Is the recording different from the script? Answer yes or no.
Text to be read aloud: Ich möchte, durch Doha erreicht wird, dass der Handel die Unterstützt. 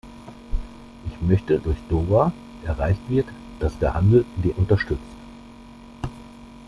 no